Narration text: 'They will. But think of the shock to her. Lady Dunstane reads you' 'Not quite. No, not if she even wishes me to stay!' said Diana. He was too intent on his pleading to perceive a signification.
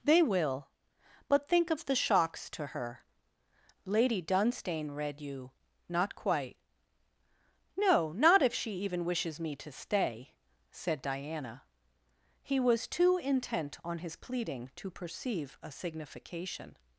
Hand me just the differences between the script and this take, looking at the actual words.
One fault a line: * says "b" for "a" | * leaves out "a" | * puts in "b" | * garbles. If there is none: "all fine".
* says "shocks" for "shock"
* says "read" for "reads"